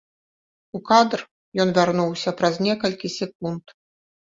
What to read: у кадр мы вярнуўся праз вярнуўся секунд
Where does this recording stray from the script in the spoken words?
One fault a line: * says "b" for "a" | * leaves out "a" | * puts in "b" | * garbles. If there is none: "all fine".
* says "ён" for "мы"
* says "некалькі" for "вярнуўся"